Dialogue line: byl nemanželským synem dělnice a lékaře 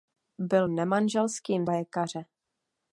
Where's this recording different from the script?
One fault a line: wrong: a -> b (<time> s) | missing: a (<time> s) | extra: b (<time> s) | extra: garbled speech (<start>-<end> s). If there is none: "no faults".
missing: synem dělnice a (1.7 s)